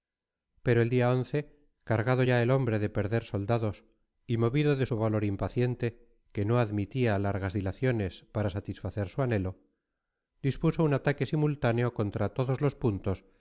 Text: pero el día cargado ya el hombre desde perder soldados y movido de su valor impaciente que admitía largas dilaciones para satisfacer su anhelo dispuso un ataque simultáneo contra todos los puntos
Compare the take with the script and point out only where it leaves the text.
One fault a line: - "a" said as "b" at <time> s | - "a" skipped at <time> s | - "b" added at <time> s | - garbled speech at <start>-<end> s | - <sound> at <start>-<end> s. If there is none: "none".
- "desde" said as "de" at 2.8 s
- "no" added at 6.4 s